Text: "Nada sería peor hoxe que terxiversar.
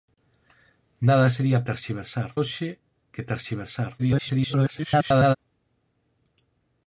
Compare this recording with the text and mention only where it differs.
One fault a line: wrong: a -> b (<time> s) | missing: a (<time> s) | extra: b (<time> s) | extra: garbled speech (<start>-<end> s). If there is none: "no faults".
wrong: peor -> terxiversar (1.7 s)
extra: garbled speech (4.0-5.4 s)